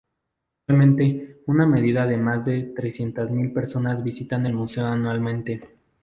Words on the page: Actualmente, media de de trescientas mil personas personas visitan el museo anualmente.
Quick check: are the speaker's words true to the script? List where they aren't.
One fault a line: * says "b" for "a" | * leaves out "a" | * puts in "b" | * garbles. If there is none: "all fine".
* puts in "una"
* puts in "más"
* leaves out "personas"